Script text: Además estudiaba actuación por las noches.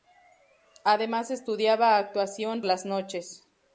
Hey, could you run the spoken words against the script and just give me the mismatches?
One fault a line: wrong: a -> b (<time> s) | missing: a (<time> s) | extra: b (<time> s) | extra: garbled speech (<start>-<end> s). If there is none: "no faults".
missing: por (2.6 s)